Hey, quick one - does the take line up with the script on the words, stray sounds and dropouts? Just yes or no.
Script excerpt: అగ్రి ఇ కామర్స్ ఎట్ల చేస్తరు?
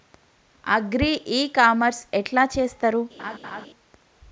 no